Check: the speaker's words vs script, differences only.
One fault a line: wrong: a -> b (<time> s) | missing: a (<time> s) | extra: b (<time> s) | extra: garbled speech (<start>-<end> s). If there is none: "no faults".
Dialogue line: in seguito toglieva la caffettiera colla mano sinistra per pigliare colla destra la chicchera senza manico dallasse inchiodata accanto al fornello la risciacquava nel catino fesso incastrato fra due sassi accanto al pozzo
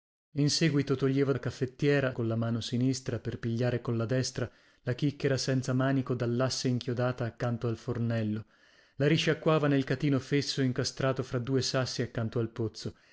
no faults